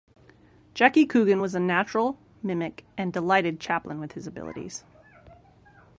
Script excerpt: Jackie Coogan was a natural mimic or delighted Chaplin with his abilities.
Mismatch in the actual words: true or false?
true